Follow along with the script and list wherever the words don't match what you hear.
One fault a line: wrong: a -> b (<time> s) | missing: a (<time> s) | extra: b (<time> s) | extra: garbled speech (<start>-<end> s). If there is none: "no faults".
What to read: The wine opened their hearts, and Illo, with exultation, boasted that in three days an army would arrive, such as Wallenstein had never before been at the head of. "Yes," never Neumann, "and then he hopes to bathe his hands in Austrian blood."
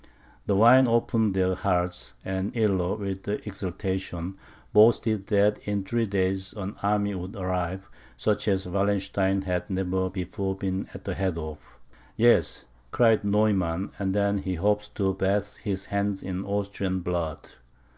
wrong: never -> cried (12.9 s)